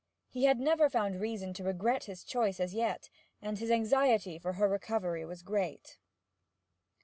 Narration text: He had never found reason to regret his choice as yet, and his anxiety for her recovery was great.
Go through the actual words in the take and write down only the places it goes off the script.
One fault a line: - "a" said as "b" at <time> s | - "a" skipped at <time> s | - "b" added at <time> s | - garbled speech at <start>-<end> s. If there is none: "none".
none